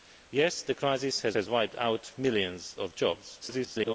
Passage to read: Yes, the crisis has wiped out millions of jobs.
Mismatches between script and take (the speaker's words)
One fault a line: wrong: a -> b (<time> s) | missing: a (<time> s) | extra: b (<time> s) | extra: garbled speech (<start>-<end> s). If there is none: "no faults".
extra: has (1.3 s)
extra: garbled speech (3.4-3.9 s)